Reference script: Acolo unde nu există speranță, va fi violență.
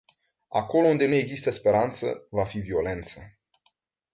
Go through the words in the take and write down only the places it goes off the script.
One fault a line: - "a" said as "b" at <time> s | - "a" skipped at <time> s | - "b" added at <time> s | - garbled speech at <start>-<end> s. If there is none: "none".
none